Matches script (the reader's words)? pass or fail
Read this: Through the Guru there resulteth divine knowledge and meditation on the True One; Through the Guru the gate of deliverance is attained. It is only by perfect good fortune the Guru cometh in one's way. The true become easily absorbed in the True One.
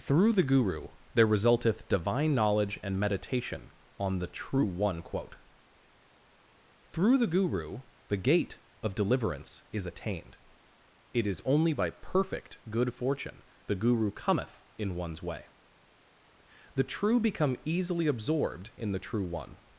fail